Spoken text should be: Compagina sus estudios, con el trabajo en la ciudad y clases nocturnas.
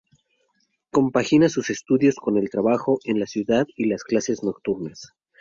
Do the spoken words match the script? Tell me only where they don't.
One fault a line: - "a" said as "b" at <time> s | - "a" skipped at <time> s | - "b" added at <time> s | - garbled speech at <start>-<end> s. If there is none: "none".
- "las" added at 3.9 s